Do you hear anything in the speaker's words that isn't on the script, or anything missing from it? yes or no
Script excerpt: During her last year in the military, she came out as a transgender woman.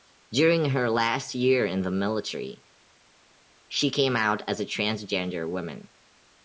no